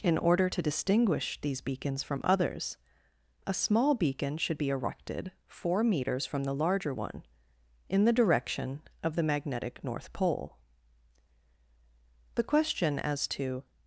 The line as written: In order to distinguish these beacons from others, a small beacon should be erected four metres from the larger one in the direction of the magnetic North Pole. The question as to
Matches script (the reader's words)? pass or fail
pass